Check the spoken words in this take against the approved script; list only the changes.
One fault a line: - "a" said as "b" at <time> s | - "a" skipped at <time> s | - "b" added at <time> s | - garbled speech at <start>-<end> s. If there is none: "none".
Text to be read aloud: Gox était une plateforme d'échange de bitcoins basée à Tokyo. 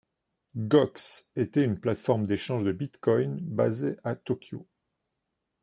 none